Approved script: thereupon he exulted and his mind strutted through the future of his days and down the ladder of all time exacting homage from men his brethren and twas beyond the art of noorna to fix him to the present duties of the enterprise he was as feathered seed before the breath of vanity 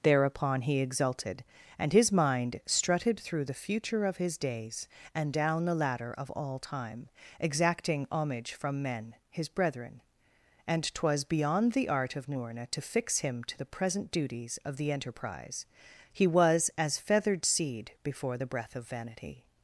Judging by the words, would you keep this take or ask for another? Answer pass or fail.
pass